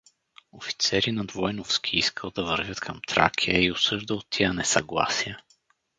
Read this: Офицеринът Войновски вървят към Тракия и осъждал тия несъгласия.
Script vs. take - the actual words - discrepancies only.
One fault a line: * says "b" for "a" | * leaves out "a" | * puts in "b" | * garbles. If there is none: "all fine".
* puts in "искал да"